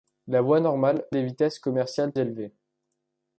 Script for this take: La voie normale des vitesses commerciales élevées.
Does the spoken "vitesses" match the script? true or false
true